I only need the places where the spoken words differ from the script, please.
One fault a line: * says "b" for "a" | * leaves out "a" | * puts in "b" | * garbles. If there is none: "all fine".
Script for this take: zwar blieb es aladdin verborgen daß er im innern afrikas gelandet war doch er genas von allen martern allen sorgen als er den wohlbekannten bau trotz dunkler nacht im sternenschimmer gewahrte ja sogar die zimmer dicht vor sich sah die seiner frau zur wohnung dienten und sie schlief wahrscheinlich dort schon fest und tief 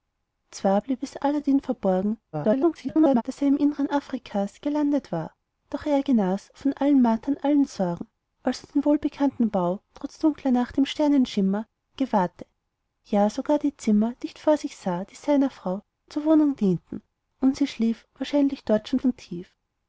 * garbles
* leaves out "fest"